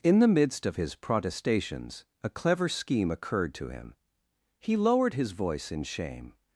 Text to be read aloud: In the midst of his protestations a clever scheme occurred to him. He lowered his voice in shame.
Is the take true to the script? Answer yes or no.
yes